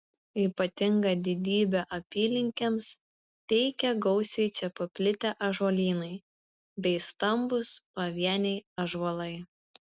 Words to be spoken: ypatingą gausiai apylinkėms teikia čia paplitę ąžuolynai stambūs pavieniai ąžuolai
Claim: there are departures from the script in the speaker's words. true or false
true